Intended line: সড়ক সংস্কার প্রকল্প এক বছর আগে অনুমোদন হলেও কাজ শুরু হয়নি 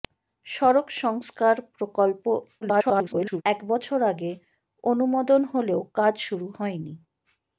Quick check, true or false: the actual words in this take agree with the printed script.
false